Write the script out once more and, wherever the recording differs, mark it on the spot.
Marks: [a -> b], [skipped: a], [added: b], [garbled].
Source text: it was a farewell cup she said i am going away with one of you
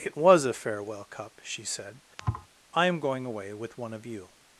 it was a farewell cup she said i am going away with one of you